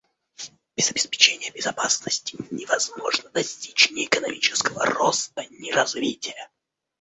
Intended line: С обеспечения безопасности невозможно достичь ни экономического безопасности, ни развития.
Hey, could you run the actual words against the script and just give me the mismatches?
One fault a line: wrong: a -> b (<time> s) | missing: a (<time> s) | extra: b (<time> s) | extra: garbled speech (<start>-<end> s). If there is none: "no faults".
wrong: С -> Без (0.8 s)
wrong: безопасности -> роста (4.8 s)